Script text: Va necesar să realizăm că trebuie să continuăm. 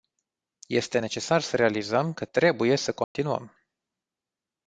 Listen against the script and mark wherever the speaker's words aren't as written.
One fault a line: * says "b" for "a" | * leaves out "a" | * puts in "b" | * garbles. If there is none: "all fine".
* says "Este" for "Va"